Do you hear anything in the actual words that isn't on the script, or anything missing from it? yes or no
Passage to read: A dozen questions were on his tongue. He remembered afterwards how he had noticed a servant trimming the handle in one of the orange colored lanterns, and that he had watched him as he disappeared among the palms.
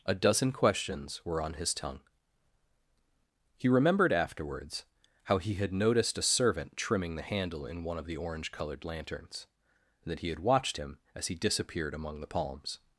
no